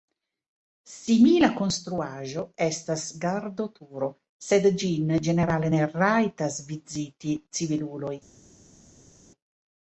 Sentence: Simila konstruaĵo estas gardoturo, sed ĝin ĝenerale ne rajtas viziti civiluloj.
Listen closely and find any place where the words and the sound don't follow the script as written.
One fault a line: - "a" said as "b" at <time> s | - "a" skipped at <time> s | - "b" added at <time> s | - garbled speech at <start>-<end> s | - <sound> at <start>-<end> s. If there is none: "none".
none